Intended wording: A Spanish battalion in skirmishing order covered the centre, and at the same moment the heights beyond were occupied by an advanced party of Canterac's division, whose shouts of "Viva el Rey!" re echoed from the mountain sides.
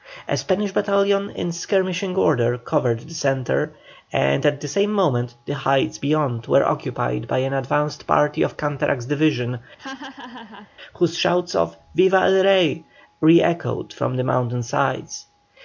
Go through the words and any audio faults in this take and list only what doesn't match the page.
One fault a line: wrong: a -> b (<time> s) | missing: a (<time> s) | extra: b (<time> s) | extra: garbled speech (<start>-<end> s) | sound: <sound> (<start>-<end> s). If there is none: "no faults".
sound: laugh (9.8-10.7 s)